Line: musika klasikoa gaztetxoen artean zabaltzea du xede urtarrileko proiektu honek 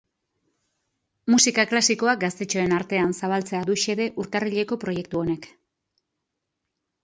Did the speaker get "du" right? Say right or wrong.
right